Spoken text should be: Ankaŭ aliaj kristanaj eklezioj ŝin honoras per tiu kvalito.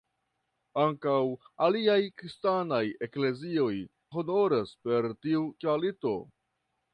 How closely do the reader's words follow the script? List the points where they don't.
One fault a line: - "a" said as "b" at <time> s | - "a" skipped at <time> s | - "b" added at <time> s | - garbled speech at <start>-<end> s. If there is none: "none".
- "ŝin" skipped at 3.8 s